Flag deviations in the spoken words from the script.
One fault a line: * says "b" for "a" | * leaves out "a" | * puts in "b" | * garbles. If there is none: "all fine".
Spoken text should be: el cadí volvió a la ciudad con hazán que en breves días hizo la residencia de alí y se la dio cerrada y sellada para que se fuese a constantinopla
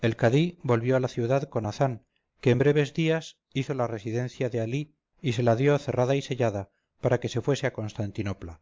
all fine